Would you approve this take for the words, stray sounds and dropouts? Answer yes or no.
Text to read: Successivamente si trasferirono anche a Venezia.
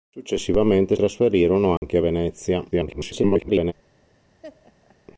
no